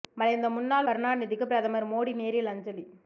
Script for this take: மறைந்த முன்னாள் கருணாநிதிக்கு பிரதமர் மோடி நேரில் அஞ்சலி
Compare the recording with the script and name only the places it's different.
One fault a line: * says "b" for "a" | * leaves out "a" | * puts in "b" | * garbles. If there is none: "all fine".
all fine